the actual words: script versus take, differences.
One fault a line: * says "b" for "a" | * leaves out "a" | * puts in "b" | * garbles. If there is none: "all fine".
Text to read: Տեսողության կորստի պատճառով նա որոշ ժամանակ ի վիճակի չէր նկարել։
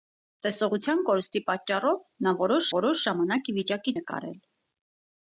* puts in "որոշ"
* leaves out "չէր"